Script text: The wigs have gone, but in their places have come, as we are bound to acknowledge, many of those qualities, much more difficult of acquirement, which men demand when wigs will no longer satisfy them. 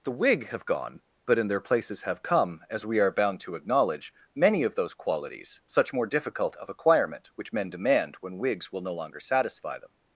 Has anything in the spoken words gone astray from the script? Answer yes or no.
yes